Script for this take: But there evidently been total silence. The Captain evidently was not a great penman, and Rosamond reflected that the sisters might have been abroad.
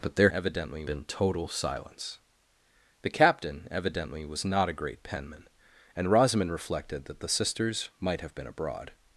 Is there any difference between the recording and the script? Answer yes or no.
no